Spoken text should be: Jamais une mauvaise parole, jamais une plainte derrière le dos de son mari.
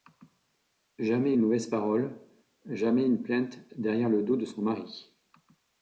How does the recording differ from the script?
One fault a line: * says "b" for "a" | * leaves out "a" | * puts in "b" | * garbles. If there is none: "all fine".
all fine